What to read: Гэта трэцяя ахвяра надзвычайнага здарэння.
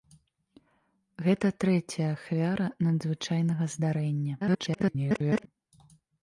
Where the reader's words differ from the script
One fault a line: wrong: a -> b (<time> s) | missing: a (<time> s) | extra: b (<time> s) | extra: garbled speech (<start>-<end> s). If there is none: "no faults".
extra: garbled speech (4.4-5.5 s)